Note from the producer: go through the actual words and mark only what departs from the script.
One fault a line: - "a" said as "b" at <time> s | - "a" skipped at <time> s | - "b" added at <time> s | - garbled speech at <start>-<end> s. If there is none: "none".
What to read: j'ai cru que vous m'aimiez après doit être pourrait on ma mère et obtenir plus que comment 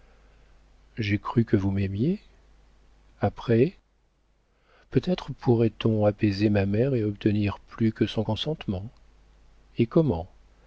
- "doit" said as "peut" at 4.9 s
- "apaiser" added at 6.0 s
- "son consentement et" added at 8.1 s